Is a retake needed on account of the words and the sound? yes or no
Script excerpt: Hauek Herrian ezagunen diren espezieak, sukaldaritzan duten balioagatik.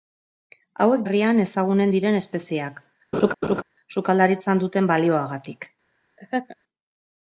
yes